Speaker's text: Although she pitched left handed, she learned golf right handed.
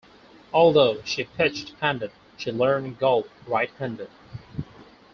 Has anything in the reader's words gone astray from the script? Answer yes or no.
yes